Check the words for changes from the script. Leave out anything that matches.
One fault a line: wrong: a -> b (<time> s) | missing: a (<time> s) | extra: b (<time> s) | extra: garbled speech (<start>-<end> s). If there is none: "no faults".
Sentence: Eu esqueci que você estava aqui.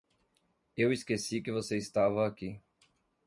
no faults